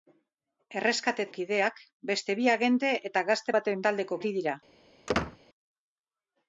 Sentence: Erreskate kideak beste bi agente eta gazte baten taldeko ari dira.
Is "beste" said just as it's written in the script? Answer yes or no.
yes